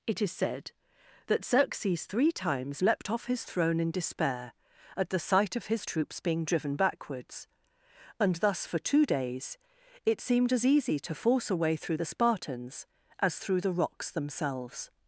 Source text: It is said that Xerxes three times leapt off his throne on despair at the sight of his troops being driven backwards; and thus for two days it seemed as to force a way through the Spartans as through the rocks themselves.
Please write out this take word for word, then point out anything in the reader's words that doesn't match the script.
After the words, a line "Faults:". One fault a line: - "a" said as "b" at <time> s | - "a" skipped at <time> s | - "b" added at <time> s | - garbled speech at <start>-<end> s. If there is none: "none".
It is said that Xerxes three times leapt off his throne in despair at the sight of his troops being driven backwards; and thus for two days it seemed as easy to force a way through the Spartans as through the rocks themselves.
Faults:
- "on" said as "in" at 3.8 s
- "easy" added at 10.6 s